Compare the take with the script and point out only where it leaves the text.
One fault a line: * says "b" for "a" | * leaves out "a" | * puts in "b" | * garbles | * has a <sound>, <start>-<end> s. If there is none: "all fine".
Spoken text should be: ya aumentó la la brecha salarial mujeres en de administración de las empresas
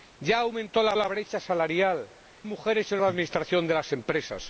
all fine